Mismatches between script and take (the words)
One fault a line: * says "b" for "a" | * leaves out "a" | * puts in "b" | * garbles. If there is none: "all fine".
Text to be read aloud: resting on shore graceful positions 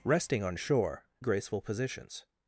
all fine